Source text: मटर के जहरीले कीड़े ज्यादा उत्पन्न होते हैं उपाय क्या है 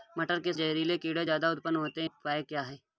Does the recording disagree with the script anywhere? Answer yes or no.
no